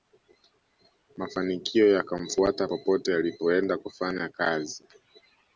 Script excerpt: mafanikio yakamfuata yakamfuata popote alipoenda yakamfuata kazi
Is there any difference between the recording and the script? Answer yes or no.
yes